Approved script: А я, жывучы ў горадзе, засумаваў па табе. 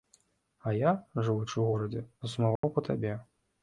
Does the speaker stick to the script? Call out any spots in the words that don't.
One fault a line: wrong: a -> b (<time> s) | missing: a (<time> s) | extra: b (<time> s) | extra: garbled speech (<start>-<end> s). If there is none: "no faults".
no faults